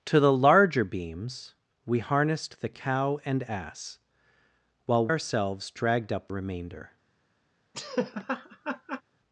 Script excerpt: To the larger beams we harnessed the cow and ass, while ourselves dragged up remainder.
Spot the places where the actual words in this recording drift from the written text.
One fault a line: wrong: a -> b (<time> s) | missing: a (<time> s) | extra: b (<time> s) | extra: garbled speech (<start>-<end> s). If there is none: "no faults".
no faults